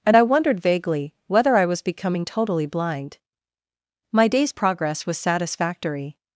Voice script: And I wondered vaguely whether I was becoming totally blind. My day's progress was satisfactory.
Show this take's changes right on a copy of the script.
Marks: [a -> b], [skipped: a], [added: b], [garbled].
And I wondered vaguely whether I was becoming totally blind. My day's progress was satisfactory.